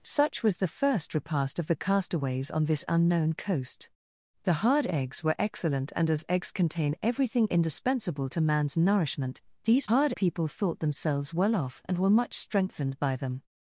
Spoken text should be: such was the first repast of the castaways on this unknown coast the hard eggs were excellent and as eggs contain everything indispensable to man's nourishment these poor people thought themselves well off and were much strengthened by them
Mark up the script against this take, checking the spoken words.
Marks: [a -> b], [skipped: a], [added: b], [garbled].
such was the first repast of the castaways on this unknown coast the hard eggs were excellent and as eggs contain everything indispensable to man's nourishment these [poor -> hard] people thought themselves well off and were much strengthened by them